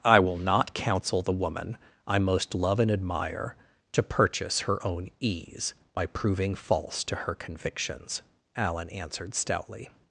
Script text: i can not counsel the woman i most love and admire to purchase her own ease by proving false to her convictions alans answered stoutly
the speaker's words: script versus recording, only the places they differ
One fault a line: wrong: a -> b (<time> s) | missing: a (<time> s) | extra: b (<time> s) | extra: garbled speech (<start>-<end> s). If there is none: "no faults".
wrong: can -> will (0.2 s)
wrong: alans -> alan (8.6 s)